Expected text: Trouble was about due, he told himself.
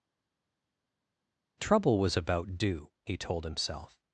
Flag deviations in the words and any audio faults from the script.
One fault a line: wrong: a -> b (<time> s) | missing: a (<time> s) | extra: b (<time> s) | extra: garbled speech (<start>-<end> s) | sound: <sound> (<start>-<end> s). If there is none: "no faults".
no faults